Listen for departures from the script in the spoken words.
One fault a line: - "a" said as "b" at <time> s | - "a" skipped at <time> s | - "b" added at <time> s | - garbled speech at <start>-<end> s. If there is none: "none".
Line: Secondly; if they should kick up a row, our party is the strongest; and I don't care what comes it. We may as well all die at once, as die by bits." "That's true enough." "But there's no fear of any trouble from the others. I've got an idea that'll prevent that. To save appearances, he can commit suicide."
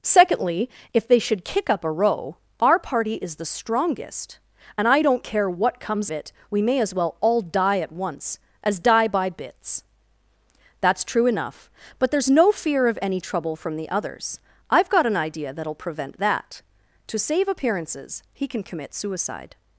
none